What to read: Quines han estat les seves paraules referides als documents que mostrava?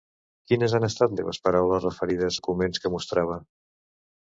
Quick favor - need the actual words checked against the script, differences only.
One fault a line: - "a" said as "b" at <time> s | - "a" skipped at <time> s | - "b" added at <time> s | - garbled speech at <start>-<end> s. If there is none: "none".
- "les" skipped at 1.1 s
- "als" skipped at 2.4 s